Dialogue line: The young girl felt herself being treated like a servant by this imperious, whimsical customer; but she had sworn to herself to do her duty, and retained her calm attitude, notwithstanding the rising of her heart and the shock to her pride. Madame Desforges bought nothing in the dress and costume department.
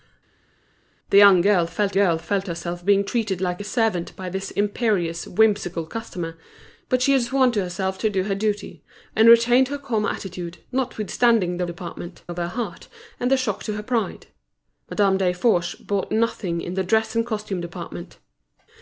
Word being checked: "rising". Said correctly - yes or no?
no